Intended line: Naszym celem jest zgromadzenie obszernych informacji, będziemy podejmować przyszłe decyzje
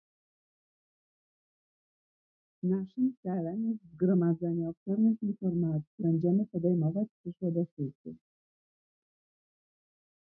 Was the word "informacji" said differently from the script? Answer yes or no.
no